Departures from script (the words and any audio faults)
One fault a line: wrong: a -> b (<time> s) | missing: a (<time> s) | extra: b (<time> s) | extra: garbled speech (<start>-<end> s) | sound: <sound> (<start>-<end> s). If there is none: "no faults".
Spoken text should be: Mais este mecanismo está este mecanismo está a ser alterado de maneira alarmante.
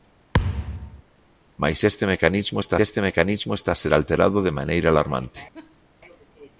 sound: thud (0.3-1.0 s)
sound: laugh (5.5-5.9 s)